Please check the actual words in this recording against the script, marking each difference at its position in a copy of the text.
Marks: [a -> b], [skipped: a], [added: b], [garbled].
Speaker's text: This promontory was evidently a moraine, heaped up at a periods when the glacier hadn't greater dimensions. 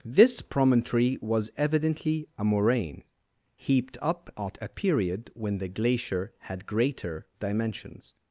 This promontory was evidently a moraine, heaped up at a [periods -> period] when the glacier [hadn't -> had] greater dimensions.